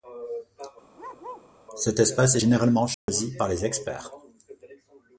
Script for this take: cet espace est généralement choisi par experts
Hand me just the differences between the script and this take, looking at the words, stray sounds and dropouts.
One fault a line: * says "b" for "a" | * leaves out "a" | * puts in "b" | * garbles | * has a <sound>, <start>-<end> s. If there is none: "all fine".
* has a bark, 1.0-1.5 s
* has a dropout, 2.9-3.1 s
* puts in "les"